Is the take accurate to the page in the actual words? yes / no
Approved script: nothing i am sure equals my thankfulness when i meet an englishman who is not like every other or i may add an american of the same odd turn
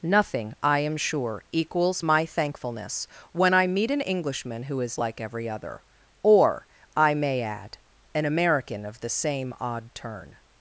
no